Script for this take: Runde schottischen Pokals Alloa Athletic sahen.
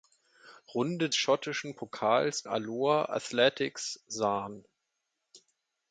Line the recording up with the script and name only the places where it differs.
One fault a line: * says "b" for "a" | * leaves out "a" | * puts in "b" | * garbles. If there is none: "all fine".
all fine